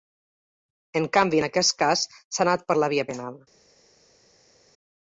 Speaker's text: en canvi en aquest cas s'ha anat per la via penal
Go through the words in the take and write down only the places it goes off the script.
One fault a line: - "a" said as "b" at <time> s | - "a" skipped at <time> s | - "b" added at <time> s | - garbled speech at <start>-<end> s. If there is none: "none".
none